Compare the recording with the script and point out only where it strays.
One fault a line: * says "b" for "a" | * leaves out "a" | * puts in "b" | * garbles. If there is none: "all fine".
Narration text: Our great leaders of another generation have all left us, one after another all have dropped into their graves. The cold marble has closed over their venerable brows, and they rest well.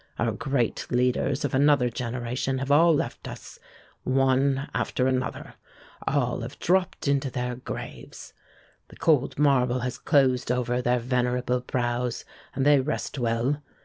all fine